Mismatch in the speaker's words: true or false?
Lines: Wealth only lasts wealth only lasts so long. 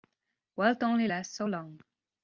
true